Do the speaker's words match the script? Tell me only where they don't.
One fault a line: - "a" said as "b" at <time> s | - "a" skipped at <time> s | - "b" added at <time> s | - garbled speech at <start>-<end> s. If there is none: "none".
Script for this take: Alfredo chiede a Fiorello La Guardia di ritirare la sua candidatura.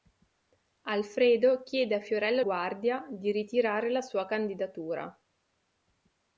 - "La" skipped at 2.4 s